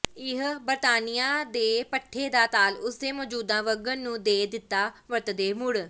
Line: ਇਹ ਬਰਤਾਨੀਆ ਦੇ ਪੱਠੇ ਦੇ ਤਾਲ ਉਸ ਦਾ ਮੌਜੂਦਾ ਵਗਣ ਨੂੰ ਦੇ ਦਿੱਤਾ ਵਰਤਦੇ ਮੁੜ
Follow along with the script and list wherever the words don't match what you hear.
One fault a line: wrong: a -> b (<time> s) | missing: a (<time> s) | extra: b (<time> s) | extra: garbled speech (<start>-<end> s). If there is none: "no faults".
wrong: ਦੇ -> ਦਾ (2.3 s)
wrong: ਦਾ -> ਦੇ (3.0 s)